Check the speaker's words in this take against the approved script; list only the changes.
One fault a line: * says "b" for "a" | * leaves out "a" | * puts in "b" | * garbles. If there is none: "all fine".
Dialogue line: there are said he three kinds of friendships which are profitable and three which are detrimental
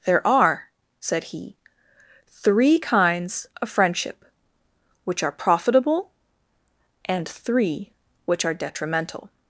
* says "friendship" for "friendships"